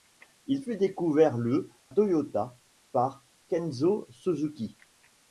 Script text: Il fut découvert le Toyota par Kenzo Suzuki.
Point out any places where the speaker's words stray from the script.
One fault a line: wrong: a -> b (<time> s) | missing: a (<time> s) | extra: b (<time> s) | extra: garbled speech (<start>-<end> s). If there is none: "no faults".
no faults